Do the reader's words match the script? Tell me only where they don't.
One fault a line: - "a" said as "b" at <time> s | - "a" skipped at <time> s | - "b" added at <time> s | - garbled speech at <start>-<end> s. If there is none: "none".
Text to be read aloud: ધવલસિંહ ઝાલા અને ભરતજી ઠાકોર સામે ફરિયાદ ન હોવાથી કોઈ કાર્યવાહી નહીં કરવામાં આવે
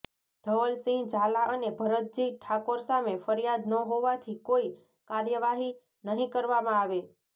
none